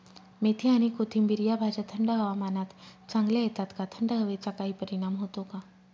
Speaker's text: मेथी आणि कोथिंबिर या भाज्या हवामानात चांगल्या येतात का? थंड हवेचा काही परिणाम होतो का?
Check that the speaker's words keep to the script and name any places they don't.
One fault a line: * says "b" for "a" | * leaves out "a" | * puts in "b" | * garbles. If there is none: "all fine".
* puts in "थंड"